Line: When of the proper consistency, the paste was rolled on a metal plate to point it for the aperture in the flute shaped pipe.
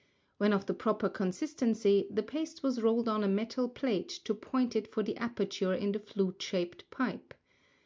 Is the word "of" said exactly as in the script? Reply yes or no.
yes